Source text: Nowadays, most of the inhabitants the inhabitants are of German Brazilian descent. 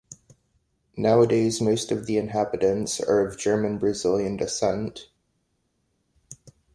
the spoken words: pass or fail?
fail